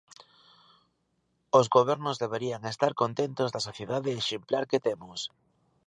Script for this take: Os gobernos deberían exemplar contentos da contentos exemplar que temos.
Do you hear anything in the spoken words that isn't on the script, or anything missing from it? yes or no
yes